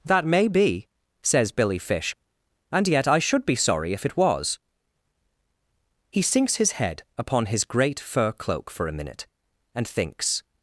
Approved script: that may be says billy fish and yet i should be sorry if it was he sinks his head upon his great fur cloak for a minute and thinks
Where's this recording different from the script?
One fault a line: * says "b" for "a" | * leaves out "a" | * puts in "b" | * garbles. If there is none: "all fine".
all fine